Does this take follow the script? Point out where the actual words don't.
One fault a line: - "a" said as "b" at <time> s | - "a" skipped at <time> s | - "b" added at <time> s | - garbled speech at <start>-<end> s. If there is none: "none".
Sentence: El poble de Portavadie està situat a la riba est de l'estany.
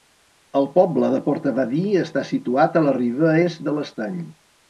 none